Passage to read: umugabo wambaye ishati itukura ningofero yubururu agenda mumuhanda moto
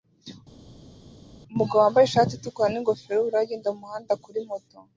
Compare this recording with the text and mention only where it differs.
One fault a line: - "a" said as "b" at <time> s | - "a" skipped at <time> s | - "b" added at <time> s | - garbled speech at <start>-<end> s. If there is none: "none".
- "kuri" added at 4.2 s